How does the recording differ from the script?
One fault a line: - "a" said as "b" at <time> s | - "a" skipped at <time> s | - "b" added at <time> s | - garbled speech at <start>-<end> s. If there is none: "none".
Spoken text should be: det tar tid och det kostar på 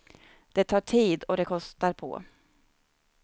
none